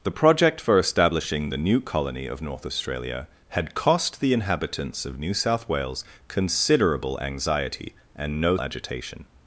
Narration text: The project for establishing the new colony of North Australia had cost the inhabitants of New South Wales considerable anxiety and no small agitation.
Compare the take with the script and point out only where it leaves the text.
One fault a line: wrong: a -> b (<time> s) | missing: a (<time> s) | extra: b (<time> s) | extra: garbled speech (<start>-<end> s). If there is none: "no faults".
missing: small (8.6 s)